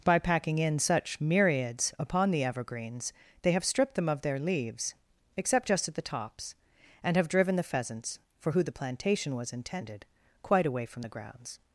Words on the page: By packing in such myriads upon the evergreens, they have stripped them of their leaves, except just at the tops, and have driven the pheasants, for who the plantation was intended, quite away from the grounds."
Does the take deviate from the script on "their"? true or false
false